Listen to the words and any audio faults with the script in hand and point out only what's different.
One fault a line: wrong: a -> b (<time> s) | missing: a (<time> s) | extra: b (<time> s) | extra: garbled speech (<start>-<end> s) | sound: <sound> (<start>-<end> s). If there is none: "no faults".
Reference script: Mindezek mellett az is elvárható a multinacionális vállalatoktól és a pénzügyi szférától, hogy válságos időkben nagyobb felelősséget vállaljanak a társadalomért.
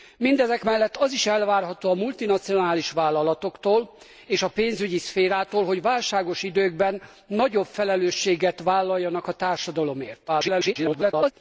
extra: garbled speech (10.3-11.3 s)